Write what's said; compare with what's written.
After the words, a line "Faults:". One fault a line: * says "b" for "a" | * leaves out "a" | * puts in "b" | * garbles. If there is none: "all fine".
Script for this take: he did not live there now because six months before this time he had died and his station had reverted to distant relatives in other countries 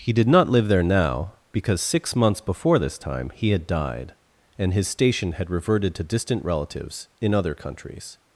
he did not live there now because six months before this time he had died and his station had reverted to distant relatives in other countries
Faults:
all fine